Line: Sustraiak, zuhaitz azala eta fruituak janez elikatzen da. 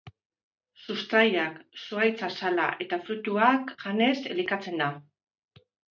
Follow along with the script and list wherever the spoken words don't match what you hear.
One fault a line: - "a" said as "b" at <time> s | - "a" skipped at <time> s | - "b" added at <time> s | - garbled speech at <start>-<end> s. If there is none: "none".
none